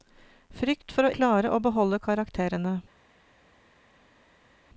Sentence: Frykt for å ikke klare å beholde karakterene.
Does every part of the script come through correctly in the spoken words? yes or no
no